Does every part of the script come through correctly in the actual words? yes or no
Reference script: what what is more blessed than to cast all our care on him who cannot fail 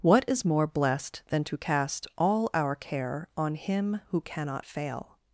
no